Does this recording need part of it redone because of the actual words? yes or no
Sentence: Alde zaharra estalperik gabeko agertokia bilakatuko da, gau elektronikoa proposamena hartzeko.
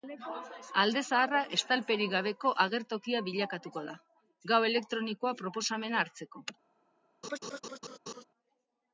no